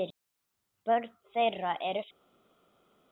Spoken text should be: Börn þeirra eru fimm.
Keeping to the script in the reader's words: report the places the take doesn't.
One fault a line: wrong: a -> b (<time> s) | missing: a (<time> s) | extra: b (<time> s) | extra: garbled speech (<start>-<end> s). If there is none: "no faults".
no faults